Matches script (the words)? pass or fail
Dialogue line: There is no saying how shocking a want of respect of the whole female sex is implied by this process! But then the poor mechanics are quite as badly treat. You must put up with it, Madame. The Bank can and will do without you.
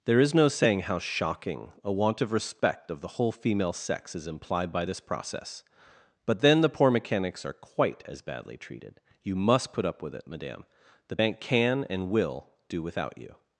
fail